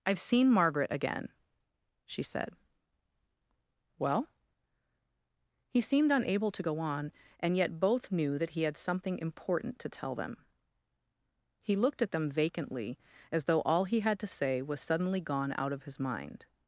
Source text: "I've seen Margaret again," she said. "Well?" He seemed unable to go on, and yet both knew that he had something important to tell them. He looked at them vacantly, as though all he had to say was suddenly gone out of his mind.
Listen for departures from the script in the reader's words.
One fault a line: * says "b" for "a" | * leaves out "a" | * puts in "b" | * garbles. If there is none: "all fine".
all fine